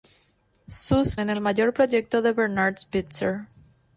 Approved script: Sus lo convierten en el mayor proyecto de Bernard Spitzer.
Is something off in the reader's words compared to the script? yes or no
yes